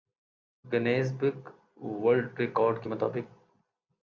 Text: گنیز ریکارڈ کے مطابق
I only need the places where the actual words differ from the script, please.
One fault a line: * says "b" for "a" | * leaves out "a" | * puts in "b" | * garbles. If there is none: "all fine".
* puts in "بک ورلڈ"